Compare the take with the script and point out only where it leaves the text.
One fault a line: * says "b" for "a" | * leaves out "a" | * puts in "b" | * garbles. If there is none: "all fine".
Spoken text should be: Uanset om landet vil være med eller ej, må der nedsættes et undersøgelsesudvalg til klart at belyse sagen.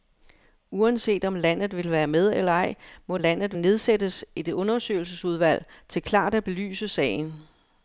* says "landet" for "der"